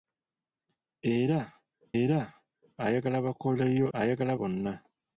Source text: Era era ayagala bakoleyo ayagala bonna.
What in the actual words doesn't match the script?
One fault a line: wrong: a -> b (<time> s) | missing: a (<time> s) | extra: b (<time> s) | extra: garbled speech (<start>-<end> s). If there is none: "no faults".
no faults